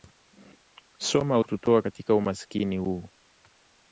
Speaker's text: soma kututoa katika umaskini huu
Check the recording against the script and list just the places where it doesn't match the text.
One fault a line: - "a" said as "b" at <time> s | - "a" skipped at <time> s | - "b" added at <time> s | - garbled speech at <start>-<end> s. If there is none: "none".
none